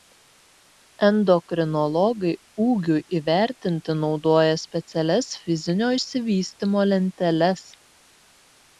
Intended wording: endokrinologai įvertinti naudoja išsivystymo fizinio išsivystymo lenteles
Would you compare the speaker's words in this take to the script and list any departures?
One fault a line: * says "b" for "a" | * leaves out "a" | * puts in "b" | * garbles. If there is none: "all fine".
* puts in "ūgiui"
* says "specialias" for "išsivystymo"